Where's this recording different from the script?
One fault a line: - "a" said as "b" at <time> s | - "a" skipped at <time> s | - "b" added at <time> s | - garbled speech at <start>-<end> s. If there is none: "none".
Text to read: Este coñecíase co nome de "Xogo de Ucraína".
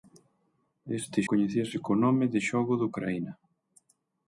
none